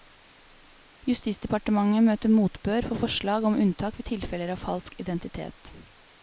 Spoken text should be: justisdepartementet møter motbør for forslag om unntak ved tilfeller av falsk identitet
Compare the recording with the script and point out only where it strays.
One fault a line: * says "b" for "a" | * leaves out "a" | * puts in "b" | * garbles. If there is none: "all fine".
all fine